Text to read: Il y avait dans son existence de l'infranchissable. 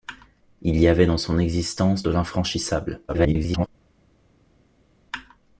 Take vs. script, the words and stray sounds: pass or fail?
fail